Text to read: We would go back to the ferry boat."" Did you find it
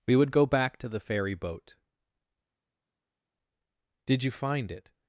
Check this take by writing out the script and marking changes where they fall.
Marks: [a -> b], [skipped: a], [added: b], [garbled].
We would go back to the ferry boat."" Did you find it